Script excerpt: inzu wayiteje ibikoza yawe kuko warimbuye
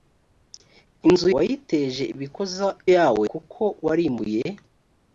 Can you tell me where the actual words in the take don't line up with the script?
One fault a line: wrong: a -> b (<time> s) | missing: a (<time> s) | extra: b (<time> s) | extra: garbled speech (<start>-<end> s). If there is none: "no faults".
no faults